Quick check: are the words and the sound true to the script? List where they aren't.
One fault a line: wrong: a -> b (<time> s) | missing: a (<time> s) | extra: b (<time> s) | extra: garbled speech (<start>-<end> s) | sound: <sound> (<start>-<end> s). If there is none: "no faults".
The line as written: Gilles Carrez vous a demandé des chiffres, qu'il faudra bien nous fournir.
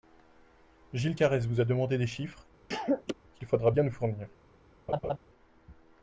sound: cough (2.7-3.1 s)
sound: laugh (4.9-5.2 s)